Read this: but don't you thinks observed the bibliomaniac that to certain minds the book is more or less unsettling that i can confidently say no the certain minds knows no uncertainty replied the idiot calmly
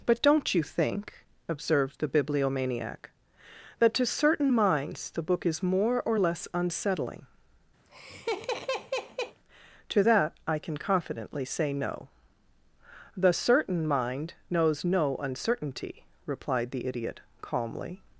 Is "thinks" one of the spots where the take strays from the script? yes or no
yes